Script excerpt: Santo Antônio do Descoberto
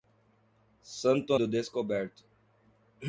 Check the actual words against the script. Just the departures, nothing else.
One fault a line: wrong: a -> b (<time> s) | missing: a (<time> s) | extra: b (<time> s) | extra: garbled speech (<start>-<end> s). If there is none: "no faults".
missing: Antônio (1.4 s)